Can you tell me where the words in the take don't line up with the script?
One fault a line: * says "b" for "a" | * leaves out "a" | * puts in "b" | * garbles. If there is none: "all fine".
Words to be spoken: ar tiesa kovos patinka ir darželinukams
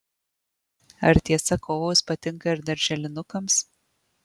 all fine